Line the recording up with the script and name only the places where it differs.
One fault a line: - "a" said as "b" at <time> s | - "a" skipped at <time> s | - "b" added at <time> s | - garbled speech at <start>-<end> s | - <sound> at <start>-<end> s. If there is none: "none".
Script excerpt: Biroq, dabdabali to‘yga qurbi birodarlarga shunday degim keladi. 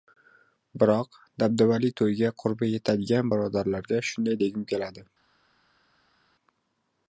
- "yetadigan" added at 2.7 s